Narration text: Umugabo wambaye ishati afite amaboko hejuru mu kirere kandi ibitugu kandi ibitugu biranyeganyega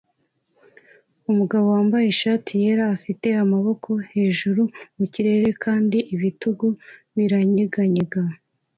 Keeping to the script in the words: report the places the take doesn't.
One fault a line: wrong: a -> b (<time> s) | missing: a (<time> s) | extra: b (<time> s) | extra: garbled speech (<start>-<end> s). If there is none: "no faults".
extra: yera (2.6 s)
missing: kandi ibitugu (6.7 s)